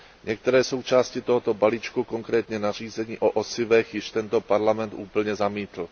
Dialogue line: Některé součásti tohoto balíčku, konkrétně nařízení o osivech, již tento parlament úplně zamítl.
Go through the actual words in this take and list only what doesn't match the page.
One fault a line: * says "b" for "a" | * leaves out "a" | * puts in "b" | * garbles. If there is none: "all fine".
all fine